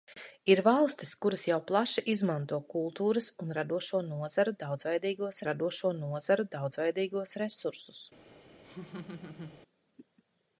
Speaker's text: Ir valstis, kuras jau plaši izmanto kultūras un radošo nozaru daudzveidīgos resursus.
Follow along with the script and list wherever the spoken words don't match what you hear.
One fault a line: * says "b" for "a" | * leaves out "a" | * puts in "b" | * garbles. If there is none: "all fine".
* puts in "radošo nozaru daudzveidīgos"